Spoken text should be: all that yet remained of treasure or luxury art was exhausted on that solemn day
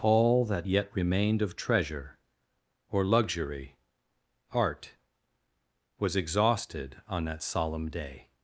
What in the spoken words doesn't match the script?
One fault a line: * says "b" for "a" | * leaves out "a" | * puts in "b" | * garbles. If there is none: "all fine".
all fine